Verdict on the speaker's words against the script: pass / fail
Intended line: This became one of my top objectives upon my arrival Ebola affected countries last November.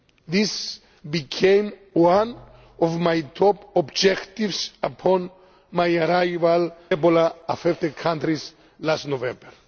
pass